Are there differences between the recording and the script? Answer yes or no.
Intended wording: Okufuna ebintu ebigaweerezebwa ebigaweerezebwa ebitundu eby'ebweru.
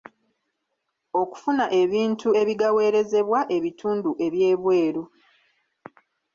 yes